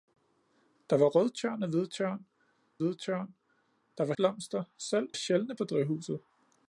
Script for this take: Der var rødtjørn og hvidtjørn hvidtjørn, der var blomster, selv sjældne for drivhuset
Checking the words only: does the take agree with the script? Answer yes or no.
yes